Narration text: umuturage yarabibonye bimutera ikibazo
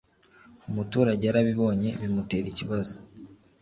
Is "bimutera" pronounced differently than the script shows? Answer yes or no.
no